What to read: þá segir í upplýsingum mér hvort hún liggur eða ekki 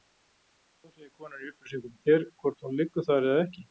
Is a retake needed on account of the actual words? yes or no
yes